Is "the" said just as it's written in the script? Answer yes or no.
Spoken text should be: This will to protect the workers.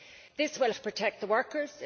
yes